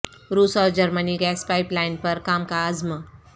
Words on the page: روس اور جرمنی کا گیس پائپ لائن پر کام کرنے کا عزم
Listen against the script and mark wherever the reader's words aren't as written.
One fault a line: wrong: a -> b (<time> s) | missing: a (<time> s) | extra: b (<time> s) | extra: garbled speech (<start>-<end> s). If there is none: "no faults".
missing: کا (1.2 s)
missing: کرنے (2.4 s)